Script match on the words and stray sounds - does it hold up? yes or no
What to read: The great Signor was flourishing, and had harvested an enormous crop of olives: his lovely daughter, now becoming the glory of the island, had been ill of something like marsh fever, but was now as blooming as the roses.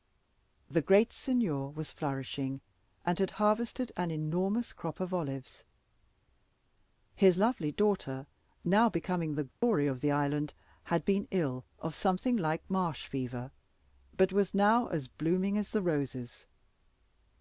no